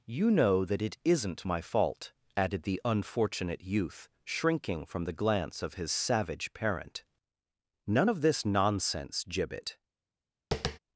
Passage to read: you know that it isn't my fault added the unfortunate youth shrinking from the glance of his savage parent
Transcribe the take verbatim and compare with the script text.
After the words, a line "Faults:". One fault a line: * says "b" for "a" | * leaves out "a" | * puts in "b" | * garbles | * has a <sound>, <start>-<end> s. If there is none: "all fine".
you know that it isn't my fault added the unfortunate youth shrinking from the glance of his savage parent none of this nonsense gibbet
Faults:
* puts in "none of this nonsense gibbet"
* has a tap, 10.5-10.8 s